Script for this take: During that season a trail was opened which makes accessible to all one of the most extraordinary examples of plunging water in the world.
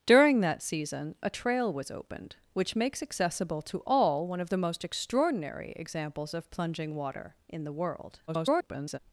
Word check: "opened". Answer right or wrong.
right